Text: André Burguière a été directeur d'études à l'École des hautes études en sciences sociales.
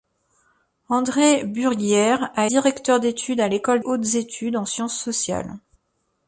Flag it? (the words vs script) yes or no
yes